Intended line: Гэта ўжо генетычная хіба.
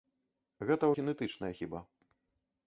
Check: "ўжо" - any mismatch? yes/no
yes